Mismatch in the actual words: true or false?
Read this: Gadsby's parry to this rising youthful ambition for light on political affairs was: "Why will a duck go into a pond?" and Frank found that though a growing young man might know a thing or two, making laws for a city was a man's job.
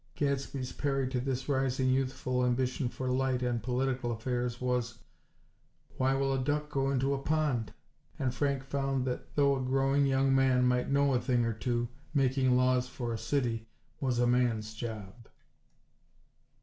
false